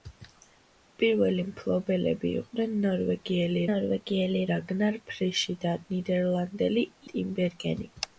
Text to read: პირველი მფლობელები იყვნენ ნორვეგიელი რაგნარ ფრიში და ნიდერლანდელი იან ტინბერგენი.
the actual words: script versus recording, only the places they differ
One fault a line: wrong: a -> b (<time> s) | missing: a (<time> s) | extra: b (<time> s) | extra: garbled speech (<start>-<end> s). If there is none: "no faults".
extra: ნორვეგიელი (3.7 s)
missing: იან (6.9 s)